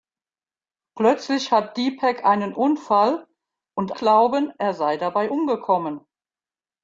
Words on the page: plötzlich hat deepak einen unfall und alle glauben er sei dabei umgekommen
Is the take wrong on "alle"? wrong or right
wrong